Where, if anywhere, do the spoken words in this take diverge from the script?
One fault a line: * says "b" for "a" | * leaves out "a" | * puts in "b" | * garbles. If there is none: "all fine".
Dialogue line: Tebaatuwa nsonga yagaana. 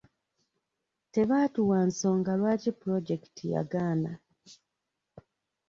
* puts in "lwaki pulojekiti"